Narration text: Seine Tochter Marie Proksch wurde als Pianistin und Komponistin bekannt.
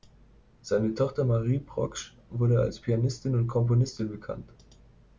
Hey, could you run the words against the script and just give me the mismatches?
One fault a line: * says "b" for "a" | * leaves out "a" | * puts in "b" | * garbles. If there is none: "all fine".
all fine